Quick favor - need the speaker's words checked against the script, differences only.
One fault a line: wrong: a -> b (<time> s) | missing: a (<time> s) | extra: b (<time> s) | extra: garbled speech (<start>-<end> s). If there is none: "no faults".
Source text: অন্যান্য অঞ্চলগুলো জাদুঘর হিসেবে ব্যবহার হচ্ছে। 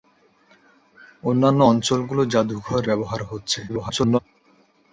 missing: হিসেবে (2.8 s)
extra: garbled speech (3.7-4.2 s)